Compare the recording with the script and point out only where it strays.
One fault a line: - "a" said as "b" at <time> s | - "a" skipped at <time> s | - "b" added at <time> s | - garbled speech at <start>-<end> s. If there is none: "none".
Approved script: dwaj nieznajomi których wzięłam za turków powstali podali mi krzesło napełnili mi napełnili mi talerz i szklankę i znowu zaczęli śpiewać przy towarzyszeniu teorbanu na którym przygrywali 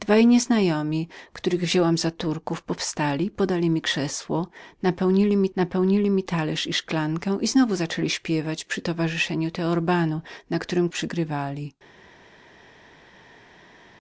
none